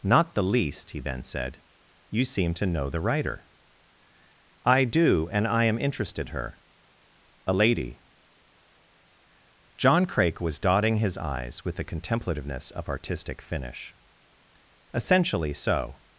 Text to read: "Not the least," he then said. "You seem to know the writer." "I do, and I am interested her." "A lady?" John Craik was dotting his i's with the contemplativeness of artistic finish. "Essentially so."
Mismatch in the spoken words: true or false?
false